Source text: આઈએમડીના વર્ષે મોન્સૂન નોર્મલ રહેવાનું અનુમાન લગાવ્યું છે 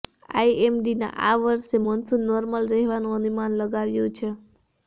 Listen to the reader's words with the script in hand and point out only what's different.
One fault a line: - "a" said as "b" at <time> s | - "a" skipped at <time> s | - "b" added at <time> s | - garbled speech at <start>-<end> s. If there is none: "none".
- "આ" added at 1.2 s